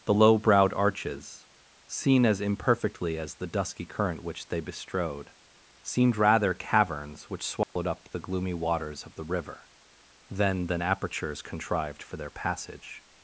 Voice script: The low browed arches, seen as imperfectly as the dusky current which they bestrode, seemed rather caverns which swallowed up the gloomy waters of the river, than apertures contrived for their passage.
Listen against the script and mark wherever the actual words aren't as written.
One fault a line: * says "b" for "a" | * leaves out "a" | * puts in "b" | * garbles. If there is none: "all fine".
* puts in "than"